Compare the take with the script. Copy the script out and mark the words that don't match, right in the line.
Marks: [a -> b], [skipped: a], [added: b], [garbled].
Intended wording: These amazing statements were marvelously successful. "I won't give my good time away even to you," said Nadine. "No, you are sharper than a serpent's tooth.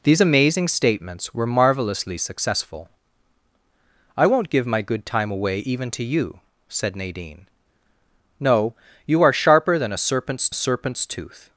These amazing statements were marvelously successful. "I won't give my good time away even to you," said Nadine. "No, you are sharper than a serpent's [added: serpent's] tooth.